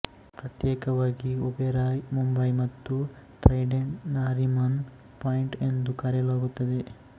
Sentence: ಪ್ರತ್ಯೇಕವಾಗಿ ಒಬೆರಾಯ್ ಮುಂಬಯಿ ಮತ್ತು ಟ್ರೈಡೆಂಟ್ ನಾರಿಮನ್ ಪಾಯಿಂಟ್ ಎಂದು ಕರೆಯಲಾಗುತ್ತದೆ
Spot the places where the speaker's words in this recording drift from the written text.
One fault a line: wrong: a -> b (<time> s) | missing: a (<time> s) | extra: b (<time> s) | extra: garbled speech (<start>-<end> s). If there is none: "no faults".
no faults